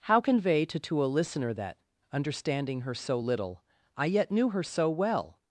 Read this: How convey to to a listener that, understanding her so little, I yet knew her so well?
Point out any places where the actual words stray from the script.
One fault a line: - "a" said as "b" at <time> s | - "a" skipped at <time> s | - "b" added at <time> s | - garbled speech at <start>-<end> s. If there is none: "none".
none